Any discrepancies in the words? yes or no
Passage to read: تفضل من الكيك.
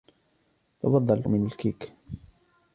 no